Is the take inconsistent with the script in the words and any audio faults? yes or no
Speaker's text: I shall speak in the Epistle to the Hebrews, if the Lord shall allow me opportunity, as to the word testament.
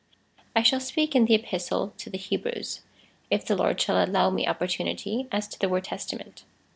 no